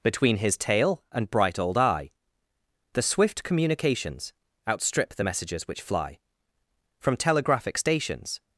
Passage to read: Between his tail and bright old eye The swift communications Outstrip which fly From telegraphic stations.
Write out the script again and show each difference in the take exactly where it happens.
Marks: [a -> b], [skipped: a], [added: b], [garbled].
Between his tail and bright old eye The swift communications Outstrip [added: the messages] which fly From telegraphic stations.